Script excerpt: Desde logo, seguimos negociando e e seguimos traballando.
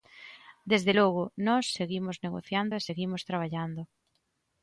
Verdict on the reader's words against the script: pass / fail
fail